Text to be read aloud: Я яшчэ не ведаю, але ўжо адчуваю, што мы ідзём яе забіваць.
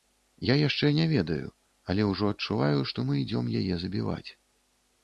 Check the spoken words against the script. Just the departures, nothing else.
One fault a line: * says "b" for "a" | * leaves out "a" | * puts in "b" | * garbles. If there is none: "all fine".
all fine